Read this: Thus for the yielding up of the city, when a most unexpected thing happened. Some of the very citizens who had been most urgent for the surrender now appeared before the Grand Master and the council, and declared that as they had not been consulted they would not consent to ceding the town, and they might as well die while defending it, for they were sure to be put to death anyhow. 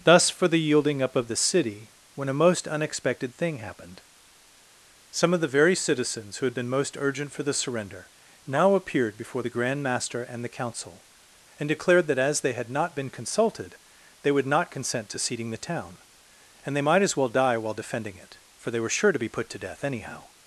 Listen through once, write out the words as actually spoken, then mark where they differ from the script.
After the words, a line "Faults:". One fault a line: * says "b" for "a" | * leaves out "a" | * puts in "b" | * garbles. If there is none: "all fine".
Thus for the yielding up of the city, when a most unexpected thing happened. Some of the very citizens who had been most urgent for the surrender now appeared before the Grand Master and the council, and declared that as they had not been consulted they would not consent to ceding the town, and they might as well die while defending it, for they were sure to be put to death anyhow.
Faults:
all fine